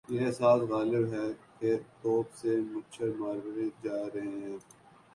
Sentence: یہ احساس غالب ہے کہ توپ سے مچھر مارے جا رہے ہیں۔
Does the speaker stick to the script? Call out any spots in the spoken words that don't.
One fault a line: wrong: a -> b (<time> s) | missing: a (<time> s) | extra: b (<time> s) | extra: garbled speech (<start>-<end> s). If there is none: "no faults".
no faults